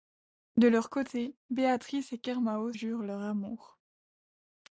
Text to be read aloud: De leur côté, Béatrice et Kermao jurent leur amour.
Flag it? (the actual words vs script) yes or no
no